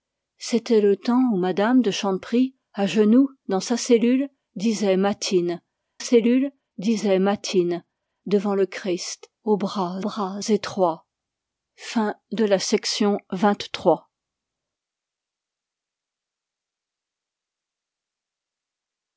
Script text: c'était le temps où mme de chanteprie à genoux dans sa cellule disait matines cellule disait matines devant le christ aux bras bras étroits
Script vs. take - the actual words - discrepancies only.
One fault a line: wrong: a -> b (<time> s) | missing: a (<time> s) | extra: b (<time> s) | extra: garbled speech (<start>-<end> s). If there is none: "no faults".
no faults